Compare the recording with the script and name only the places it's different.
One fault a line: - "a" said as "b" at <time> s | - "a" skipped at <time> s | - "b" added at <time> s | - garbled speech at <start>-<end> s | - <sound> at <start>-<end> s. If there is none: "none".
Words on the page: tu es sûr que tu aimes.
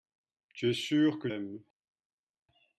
- "tu" skipped at 1.3 s